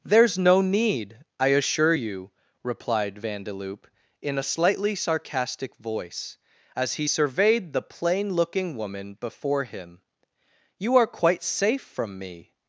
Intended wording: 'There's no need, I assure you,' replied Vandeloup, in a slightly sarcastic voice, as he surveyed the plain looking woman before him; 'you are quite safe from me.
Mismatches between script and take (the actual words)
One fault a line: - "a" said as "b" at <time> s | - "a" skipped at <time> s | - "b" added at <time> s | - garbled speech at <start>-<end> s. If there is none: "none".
none